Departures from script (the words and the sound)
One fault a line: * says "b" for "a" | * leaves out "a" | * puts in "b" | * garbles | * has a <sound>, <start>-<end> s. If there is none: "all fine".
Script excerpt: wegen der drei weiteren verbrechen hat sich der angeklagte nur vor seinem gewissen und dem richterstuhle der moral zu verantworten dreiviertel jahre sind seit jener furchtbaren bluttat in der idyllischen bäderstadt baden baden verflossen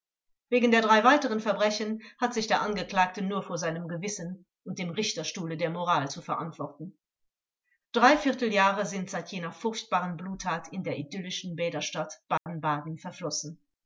* has a dropout, 12.4-12.5 s